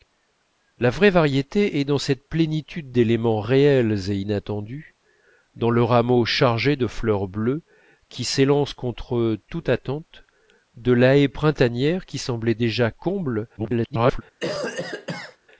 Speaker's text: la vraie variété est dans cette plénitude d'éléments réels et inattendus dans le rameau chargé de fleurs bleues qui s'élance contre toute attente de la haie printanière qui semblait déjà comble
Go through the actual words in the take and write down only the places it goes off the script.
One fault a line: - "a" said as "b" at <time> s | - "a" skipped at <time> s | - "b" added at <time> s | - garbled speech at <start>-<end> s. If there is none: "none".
- garbled speech at 13.6-14.2 s